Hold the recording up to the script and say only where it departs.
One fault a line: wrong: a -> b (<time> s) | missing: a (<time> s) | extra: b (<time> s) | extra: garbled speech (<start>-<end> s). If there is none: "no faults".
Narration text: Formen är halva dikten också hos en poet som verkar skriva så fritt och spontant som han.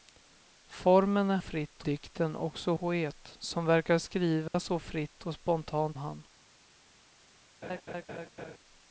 wrong: halva -> fritt (1.4 s)
missing: hos en (2.7 s)
missing: som (6.0 s)